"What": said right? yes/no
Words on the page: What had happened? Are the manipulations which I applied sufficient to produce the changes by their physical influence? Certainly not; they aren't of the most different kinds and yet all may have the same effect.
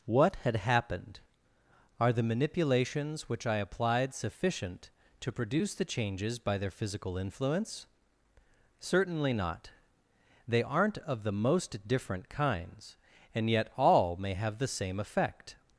yes